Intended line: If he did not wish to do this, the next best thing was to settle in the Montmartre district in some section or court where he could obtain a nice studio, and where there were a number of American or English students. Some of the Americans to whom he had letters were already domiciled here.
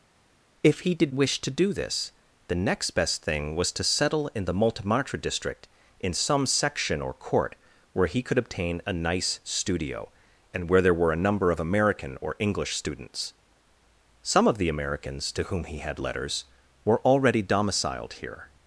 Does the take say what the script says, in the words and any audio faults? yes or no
no